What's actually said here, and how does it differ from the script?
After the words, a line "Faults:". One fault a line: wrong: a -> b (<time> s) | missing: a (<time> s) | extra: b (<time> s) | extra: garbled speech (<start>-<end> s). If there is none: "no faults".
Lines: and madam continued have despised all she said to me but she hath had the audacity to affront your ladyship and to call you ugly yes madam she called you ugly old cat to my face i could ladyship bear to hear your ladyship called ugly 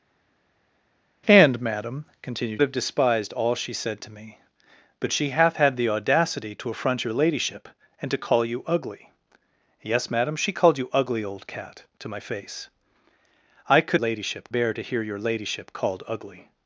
and madam continued have despised all she said to me but she hath had the audacity to affront your ladyship and to call you ugly yes madam she called you ugly old cat to my face i could ladyship bear to hear your ladyship called ugly
Faults:
no faults